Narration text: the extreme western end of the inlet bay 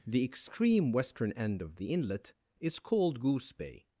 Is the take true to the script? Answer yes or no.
no